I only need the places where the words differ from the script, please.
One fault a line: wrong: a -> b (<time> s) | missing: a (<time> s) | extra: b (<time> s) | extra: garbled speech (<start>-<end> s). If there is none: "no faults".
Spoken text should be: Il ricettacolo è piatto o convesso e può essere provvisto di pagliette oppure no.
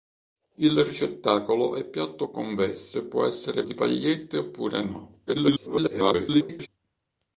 missing: provvisto (3.6 s)
extra: garbled speech (5.3-6.7 s)